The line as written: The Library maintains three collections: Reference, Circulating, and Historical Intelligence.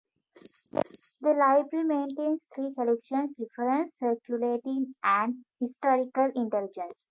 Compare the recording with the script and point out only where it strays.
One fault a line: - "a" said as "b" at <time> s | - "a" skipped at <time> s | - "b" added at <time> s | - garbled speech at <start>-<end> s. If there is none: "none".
none